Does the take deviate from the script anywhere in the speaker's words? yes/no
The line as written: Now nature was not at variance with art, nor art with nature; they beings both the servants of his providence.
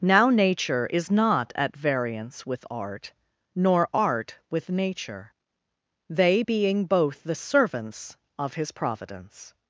yes